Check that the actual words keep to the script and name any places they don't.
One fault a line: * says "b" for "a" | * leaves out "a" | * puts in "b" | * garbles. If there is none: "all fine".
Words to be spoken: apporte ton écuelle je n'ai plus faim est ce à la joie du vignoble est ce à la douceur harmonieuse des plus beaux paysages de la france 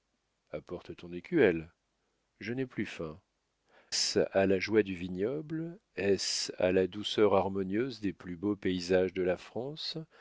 * leaves out "est"